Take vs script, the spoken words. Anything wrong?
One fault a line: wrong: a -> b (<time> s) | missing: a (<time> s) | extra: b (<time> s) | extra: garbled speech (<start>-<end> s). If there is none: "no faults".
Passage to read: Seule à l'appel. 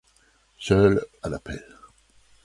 no faults